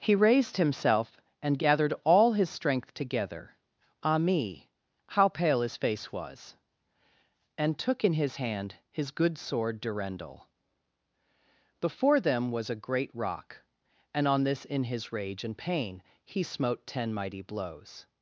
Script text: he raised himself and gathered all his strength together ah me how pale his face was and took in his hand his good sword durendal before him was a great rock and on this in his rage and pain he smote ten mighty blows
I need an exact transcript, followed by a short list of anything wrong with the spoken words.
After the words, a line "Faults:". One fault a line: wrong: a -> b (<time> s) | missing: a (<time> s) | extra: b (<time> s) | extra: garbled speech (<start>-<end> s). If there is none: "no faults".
he raised himself and gathered all his strength together ah me how pale his face was and took in his hand his good sword durendal before them was a great rock and on this in his rage and pain he smote ten mighty blows
Faults:
wrong: him -> them (12.2 s)